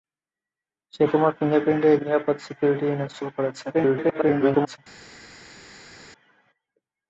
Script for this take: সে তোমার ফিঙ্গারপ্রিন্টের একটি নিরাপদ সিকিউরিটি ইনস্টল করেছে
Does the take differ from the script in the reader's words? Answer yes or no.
yes